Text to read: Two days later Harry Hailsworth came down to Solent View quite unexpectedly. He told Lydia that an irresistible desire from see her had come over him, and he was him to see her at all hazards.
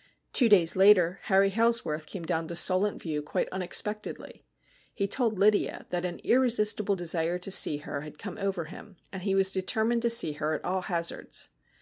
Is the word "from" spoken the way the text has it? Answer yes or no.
no